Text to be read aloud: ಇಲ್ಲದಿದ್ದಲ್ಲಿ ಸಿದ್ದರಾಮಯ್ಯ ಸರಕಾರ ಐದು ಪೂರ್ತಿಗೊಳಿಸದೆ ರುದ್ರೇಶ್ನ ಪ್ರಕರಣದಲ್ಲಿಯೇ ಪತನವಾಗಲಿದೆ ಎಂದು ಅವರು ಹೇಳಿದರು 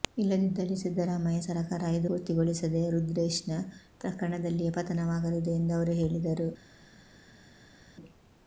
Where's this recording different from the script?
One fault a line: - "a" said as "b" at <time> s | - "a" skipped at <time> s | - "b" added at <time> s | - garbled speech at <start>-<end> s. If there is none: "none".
none